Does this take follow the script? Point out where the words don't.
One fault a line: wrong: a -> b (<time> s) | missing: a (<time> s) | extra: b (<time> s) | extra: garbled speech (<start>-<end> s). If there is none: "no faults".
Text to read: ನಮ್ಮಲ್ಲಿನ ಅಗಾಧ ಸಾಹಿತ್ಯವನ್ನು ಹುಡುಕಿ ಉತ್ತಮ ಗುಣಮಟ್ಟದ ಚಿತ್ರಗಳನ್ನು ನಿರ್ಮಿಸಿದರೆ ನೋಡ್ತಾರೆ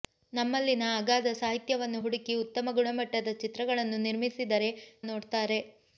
no faults